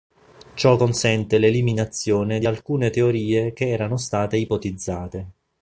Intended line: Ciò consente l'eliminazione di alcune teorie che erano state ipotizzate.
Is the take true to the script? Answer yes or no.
yes